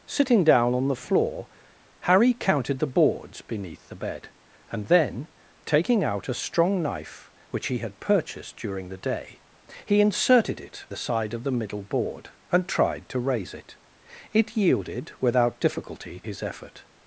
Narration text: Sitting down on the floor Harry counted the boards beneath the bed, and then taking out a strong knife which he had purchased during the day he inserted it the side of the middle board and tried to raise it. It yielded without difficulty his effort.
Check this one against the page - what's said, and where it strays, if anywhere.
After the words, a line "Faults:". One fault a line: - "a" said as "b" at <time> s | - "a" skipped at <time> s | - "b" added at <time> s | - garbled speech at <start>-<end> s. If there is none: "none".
Sitting down on the floor Harry counted the boards beneath the bed, and then taking out a strong knife which he had purchased during the day he inserted it the side of the middle board and tried to raise it. It yielded without difficulty his effort.
Faults:
none